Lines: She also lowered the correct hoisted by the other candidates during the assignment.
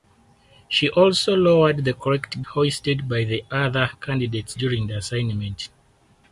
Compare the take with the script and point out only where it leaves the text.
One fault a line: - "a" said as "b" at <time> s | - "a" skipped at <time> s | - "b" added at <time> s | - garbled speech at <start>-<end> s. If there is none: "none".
none